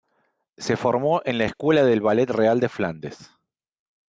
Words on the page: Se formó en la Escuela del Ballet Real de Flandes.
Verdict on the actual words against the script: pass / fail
pass